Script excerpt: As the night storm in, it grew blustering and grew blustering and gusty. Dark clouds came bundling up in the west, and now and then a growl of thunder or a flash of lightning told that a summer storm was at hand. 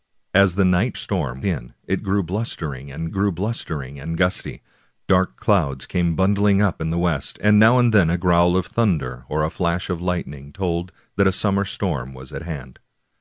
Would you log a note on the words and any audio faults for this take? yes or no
no